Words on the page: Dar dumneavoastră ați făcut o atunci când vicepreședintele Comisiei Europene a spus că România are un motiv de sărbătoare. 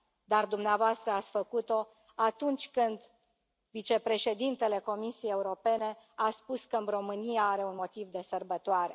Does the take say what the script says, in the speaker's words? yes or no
yes